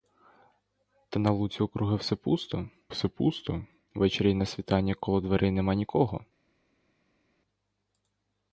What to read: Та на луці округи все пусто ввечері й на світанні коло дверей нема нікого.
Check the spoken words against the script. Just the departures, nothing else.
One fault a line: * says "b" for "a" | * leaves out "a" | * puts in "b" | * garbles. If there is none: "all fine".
* puts in "все пусто"